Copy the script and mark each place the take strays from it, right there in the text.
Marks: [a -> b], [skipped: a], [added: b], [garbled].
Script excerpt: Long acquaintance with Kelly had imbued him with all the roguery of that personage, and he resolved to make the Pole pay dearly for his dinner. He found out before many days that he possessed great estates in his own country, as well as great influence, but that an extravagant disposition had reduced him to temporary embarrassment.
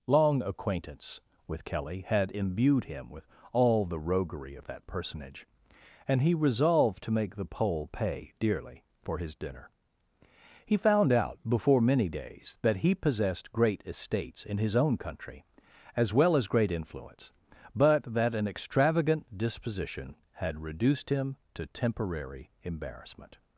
Long acquaintance with Kelly had imbued him with all the roguery of that personage, and he resolved to make the Pole pay dearly for his dinner. He found out before many days that he possessed great estates in his own country, as well as great influence, but that an extravagant disposition had reduced him to temporary embarrassment.